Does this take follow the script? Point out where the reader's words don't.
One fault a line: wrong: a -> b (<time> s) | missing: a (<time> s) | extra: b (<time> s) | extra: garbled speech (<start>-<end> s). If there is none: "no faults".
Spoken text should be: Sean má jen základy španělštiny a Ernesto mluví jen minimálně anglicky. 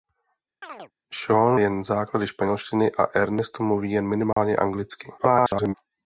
missing: má (1.6 s)
extra: garbled speech (5.2-5.7 s)